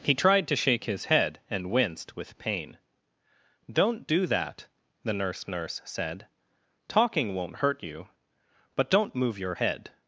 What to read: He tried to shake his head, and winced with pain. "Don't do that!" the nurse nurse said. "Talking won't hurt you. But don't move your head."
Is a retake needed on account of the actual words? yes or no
no